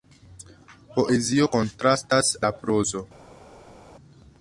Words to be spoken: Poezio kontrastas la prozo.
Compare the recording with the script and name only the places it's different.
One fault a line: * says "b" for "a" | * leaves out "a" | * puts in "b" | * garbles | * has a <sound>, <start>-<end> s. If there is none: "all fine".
all fine